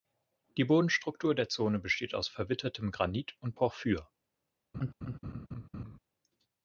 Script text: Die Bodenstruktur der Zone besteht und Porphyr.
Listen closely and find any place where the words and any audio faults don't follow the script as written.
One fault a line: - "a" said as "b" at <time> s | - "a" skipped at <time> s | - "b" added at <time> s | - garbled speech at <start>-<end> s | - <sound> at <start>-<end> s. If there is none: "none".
- "aus verwittertem Granit" added at 2.1 s
- laugh at 4.7-6.0 s